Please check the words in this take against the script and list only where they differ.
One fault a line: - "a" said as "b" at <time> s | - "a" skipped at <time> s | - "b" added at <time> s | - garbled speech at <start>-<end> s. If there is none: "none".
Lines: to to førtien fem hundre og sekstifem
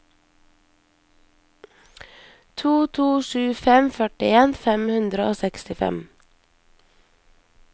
- "sju fem" added at 3.3 s